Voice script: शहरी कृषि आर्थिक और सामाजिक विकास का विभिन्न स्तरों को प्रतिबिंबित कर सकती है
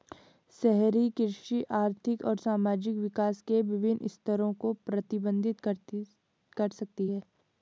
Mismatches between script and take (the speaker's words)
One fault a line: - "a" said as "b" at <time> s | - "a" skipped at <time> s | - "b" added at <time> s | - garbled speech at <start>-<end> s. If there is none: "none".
- "का" said as "के" at 3.4 s